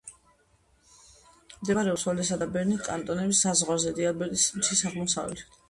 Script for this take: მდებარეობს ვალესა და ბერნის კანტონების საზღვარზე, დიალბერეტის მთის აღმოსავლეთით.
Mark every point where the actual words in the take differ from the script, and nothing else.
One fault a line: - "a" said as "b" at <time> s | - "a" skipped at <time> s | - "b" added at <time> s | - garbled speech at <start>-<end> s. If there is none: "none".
none